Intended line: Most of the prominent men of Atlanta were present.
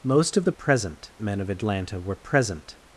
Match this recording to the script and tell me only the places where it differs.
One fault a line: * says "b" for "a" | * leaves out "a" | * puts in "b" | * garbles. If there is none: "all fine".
* says "present" for "prominent"